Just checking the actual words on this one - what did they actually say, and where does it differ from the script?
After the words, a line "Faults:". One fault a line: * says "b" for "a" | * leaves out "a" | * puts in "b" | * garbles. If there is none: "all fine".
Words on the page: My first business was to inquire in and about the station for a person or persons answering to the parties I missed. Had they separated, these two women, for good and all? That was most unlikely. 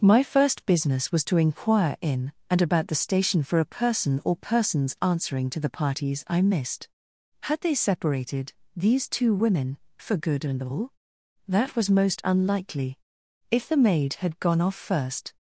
My first business was to inquire in and about the station for a person or persons answering to the parties I missed. Had they separated, these two women, for good and all? That was most unlikely. If the maid had gone off first
Faults:
* puts in "If the maid had gone off first"